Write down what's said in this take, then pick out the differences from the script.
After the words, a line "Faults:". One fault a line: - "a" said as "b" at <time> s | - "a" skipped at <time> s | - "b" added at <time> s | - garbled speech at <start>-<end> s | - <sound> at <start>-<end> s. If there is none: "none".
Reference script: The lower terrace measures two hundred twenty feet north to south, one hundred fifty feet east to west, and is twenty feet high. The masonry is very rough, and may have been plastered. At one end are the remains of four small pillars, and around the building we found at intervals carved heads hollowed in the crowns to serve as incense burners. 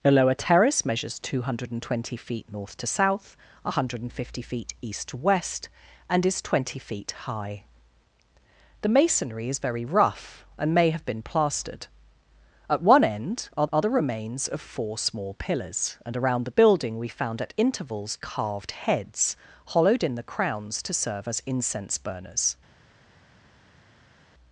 The lower terrace measures two hundred twenty feet north to south, one hundred fifty feet east to west, and is twenty feet high. The masonry is very rough, and may have been plastered. At one end are are the remains of four small pillars, and around the building we found at intervals carved heads hollowed in the crowns to serve as incense burners.
Faults:
- "are" added at 13.7 s